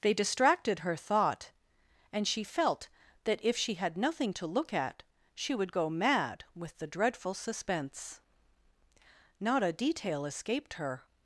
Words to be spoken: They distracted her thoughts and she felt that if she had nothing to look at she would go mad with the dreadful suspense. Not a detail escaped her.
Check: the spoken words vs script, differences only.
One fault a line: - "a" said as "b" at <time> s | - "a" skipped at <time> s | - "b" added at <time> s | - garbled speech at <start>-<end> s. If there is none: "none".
- "thoughts" said as "thought" at 0.9 s